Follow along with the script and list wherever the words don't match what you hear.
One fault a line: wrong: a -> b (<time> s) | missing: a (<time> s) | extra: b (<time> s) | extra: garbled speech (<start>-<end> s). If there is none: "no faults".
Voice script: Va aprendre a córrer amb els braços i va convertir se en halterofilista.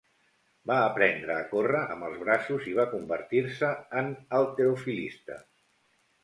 no faults